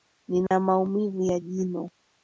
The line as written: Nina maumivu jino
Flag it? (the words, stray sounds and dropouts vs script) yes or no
yes